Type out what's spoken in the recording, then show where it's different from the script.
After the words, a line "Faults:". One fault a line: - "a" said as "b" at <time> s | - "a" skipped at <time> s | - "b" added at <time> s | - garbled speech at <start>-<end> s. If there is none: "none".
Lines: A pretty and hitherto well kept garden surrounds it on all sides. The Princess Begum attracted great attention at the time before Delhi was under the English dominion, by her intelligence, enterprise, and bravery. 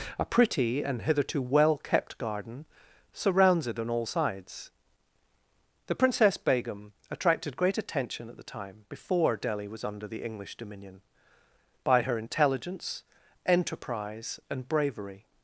A pretty and hitherto well kept garden surrounds it on all sides. The Princess Begum attracted great attention at the time before Delhi was under the English dominion, by her intelligence, enterprise, and bravery.
Faults:
none